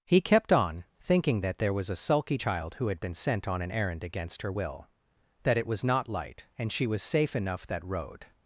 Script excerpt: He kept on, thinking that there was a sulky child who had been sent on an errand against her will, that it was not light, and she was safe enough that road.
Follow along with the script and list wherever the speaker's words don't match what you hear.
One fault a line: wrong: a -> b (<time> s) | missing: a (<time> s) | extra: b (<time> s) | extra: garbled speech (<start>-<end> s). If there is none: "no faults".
no faults